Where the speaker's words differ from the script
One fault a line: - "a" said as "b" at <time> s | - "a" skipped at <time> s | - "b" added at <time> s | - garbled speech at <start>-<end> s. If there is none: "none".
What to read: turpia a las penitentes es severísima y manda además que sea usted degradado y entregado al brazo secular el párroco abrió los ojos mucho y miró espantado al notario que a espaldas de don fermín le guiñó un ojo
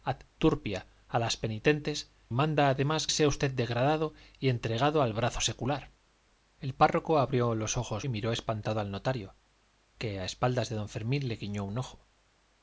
- "es severísima y" skipped at 2.1 s
- "que" skipped at 3.1 s
- "mucho" skipped at 8.1 s